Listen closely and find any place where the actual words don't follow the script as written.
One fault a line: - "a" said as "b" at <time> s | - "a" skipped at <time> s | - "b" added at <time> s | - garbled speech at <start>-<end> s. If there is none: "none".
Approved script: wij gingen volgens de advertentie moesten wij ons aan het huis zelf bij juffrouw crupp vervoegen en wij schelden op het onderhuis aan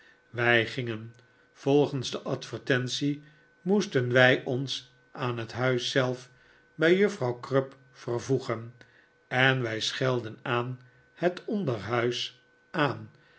- "op" said as "aan" at 10.4 s